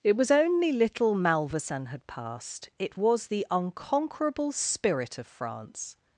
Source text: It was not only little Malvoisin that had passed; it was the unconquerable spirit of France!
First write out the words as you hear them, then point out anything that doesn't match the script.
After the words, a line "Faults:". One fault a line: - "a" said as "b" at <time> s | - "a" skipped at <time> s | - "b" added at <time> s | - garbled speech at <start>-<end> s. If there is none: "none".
It was only little Malvoisin had passed; it was the unconquerable spirit of France!
Faults:
- "not" skipped at 0.3 s
- "that" skipped at 1.9 s